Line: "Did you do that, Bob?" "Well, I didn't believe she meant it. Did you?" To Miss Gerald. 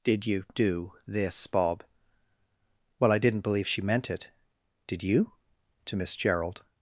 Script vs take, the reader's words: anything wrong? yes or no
yes